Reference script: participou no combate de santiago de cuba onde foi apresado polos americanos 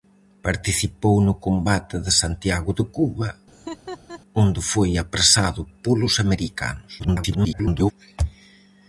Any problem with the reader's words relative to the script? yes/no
yes